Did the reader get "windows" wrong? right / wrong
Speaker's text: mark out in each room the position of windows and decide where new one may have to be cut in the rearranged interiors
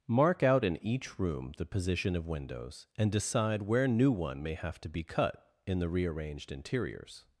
right